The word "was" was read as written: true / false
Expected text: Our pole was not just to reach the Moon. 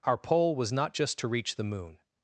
true